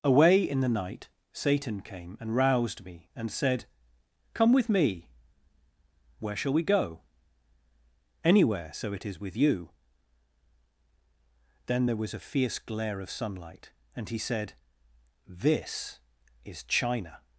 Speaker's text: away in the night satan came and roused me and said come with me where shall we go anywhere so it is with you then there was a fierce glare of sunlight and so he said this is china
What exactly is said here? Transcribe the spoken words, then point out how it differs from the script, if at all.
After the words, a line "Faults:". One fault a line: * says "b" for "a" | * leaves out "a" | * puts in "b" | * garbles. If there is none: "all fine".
away in the night satan came and roused me and said come with me where shall we go anywhere so it is with you then there was a fierce glare of sunlight and he said this is china
Faults:
* leaves out "so"